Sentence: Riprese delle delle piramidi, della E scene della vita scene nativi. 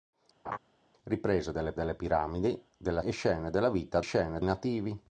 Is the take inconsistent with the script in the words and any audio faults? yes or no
yes